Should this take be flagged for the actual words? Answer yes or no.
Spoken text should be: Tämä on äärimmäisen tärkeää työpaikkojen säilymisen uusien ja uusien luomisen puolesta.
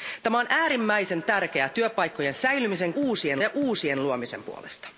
no